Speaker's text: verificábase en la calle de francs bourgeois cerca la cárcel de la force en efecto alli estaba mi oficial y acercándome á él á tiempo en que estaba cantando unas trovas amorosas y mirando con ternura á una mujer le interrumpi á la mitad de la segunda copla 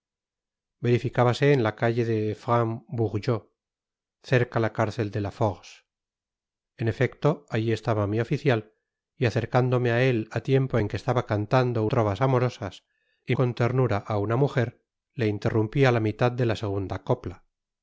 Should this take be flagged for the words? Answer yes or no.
yes